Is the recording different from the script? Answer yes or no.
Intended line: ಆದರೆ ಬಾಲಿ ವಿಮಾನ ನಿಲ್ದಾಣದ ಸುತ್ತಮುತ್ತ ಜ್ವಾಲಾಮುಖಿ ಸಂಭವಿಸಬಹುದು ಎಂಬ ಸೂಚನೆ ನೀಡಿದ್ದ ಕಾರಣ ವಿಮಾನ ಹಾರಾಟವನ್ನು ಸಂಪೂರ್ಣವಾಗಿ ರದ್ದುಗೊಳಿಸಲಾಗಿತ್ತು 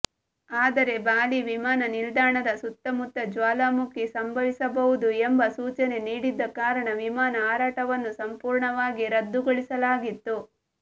no